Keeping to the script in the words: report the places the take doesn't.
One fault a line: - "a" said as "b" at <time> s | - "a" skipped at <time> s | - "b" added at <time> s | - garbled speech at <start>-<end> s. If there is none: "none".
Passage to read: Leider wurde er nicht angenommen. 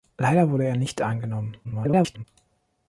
- garbled speech at 1.6-2.2 s